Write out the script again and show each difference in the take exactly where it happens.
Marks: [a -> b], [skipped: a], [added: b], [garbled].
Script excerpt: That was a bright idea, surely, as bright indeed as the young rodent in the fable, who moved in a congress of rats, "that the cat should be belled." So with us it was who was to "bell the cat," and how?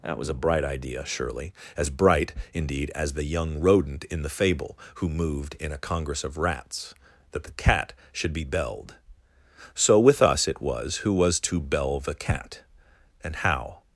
That was a bright idea, surely, as bright indeed as the young rodent in the fable, who moved in a congress of rats, "that the cat should be belled." So with us it was who was to "bell the cat," and how?